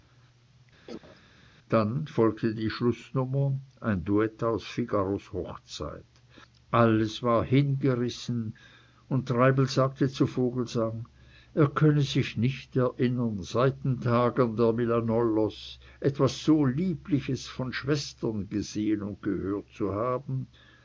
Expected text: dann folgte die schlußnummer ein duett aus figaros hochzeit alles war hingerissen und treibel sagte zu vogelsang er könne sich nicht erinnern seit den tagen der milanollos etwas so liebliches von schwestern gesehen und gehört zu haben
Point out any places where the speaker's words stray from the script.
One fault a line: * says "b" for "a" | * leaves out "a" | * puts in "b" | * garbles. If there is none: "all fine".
all fine